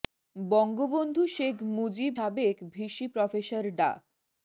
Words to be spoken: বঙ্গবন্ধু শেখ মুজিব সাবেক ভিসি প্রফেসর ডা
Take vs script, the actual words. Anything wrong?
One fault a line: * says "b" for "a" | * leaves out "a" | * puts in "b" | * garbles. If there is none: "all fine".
all fine